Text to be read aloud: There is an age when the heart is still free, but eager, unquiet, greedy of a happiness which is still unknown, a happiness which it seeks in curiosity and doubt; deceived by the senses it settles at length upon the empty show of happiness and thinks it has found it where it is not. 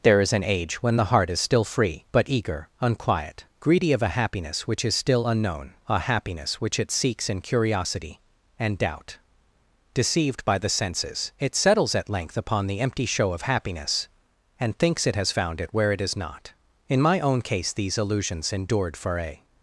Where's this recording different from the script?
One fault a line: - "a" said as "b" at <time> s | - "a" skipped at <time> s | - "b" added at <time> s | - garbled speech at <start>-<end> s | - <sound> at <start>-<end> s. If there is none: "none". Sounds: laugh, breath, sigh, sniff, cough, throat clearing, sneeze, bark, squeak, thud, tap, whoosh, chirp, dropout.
- "In my own case these illusions endured for a" added at 16.9 s